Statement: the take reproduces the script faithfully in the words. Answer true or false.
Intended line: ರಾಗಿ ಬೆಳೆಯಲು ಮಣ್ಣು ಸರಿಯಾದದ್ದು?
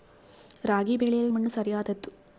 true